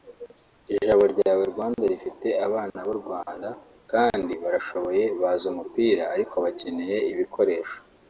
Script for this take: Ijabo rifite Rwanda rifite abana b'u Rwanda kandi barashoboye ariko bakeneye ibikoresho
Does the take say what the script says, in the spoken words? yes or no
no